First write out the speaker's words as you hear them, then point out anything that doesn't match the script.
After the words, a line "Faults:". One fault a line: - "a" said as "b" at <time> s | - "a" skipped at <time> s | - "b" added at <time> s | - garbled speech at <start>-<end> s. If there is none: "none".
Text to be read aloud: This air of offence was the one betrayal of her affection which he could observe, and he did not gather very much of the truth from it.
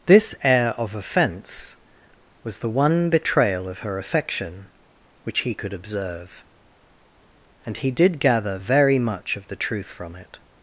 This air of offence was the one betrayal of her affection which he could observe, and he did gather very much of the truth from it.
Faults:
- "not" skipped at 8.2 s